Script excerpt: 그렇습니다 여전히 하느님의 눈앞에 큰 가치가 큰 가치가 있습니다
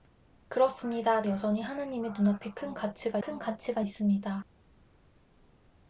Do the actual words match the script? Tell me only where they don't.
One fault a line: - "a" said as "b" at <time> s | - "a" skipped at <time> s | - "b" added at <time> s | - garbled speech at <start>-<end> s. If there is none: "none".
none